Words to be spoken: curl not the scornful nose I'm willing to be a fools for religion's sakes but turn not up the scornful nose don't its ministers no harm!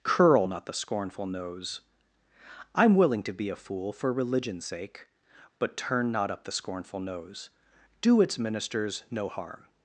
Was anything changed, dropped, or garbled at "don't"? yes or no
yes